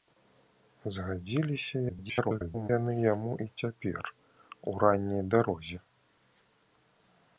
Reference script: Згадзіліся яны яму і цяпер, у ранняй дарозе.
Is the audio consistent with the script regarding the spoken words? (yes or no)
no